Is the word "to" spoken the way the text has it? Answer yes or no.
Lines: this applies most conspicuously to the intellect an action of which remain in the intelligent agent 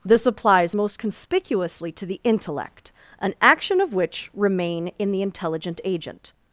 yes